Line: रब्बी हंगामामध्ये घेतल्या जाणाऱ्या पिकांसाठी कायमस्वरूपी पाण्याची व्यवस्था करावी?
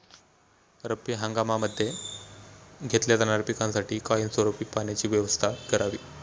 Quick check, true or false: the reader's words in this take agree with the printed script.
true